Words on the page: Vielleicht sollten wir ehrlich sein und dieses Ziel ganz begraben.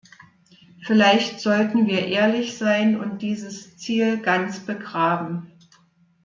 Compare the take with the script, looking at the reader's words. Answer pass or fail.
pass